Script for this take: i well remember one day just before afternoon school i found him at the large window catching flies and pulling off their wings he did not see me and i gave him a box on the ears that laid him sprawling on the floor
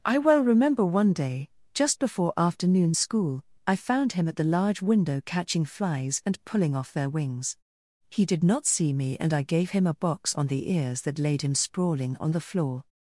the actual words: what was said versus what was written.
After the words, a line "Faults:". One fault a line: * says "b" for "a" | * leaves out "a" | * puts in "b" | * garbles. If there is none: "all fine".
i well remember one day just before afternoon school i found him at the large window catching flies and pulling off their wings he did not see me and i gave him a box on the ears that laid him sprawling on the floor
Faults:
all fine